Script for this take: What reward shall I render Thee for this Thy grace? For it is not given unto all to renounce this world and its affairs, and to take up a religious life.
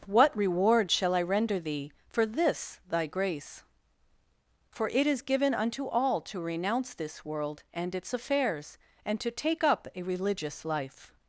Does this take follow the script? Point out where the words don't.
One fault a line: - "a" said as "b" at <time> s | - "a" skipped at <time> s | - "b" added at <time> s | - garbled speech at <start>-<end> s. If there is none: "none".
- "not" skipped at 5.2 s